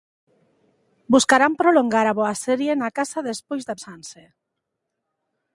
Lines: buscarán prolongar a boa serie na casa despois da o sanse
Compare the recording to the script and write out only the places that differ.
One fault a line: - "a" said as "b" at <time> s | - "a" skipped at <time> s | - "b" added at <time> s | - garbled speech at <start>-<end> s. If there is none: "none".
none